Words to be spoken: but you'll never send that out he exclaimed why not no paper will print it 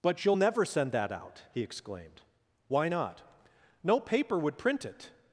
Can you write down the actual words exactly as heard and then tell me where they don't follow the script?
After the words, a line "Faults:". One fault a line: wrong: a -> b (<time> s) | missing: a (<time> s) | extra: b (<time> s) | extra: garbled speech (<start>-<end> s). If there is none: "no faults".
but you'll never send that out he exclaimed why not no paper would print it
Faults:
wrong: will -> would (4.4 s)